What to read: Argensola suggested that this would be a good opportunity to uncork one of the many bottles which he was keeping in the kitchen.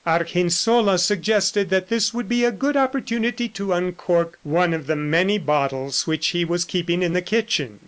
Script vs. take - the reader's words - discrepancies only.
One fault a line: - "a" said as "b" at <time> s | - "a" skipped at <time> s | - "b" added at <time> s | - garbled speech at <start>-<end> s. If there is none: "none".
none